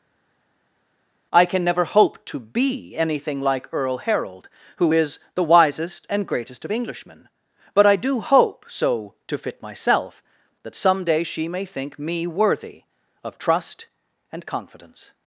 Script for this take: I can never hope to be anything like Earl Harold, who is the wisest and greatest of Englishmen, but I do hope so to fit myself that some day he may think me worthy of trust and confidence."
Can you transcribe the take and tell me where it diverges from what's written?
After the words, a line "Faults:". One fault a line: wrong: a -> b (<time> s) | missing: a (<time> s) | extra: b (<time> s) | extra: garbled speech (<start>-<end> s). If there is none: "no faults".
I can never hope to be anything like Earl Harold, who is the wisest and greatest of Englishmen, but I do hope so to fit myself that some day she may think me worthy of trust and confidence."
Faults:
wrong: he -> she (11.2 s)